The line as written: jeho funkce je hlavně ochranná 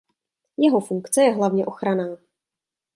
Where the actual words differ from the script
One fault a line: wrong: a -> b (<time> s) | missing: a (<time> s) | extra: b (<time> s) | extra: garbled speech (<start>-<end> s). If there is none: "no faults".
no faults